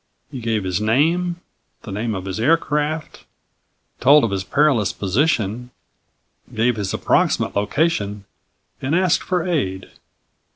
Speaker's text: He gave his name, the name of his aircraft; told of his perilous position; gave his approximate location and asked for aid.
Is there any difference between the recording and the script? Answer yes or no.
no